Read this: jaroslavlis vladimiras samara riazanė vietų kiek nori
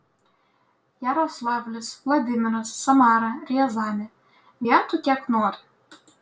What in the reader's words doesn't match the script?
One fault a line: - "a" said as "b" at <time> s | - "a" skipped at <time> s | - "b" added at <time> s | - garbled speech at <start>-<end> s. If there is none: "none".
none